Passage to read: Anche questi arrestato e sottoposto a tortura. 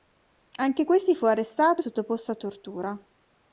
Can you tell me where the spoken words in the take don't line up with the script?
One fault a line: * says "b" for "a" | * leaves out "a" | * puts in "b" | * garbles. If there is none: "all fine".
* puts in "fu"